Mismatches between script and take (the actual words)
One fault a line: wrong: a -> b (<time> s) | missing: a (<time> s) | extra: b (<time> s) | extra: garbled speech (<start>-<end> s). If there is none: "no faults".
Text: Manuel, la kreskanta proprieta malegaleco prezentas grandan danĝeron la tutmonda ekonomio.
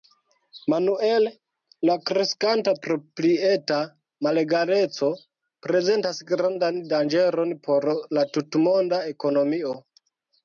extra: por (7.7 s)